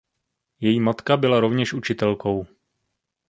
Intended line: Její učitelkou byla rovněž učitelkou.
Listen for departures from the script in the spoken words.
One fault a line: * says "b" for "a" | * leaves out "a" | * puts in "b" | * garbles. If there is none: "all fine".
* says "matka" for "učitelkou"